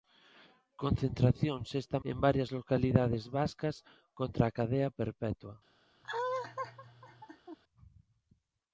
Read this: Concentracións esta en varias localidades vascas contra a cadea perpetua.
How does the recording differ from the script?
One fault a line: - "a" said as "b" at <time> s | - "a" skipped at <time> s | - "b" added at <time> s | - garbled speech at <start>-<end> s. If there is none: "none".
none